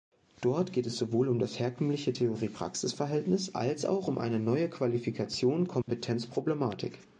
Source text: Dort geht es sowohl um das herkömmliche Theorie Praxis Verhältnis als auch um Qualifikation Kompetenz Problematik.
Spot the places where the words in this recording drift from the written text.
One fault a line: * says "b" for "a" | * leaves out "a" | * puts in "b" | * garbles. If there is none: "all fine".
* puts in "eine neue"